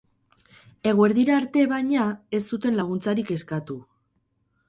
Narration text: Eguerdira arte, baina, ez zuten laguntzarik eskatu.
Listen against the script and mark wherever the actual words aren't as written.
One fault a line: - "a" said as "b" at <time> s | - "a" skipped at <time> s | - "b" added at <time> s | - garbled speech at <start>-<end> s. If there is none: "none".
none